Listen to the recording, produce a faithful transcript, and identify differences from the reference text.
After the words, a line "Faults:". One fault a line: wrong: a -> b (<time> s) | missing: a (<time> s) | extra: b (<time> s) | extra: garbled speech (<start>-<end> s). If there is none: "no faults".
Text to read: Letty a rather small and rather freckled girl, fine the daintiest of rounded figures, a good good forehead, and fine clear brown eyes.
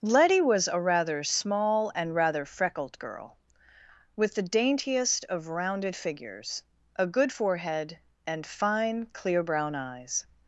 Letty was a rather small and rather freckled girl, with the daintiest of rounded figures, a good forehead, and fine clear brown eyes.
Faults:
extra: was (0.4 s)
wrong: fine -> with (4.2 s)
missing: good (7.3 s)